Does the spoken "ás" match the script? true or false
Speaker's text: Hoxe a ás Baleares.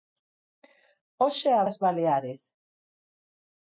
true